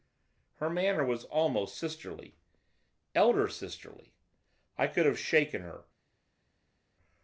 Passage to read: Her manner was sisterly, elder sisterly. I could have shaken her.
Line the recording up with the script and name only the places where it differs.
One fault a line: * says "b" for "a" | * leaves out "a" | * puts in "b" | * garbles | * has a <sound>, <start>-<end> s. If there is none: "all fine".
* puts in "almost"